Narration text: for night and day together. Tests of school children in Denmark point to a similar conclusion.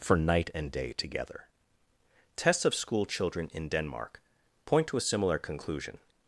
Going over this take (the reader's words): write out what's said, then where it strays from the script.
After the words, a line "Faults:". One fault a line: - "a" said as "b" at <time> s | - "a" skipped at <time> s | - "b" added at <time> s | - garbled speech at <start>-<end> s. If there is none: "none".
for night and day together. Tests of school children in Denmark point to a similar conclusion.
Faults:
none